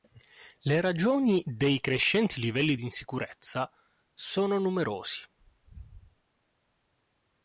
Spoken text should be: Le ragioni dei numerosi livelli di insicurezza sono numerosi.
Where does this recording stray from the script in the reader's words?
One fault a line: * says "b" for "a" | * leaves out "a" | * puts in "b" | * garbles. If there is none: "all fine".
* says "crescenti" for "numerosi"